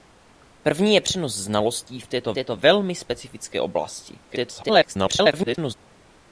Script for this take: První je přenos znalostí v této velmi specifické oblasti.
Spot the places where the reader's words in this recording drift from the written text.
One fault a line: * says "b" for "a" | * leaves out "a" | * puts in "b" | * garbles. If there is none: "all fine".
* puts in "této"
* garbles